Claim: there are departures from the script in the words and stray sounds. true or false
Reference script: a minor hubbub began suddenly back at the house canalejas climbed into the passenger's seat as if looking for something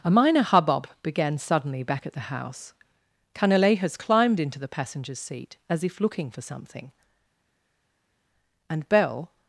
true